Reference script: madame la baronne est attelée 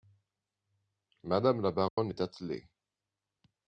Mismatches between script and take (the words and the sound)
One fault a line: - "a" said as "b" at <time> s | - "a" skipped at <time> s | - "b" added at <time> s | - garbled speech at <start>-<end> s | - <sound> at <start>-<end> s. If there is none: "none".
- dropout at 1.9-2.0 s